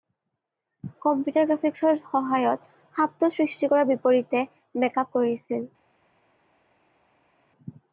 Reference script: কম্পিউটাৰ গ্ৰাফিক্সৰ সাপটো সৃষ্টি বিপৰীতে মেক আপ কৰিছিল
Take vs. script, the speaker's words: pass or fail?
fail